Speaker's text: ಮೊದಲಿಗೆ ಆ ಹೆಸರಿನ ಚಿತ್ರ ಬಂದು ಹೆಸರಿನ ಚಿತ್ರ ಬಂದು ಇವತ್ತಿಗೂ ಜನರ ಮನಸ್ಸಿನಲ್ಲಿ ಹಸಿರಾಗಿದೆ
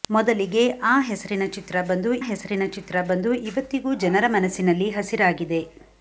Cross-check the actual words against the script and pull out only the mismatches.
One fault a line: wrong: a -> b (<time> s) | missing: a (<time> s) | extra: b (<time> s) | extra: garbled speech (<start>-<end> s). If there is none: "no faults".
no faults